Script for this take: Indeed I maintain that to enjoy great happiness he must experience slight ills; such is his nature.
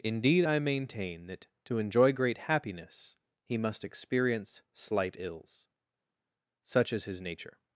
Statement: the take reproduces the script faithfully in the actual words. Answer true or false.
true